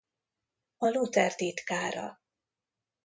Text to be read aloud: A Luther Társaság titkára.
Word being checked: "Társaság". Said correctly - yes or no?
no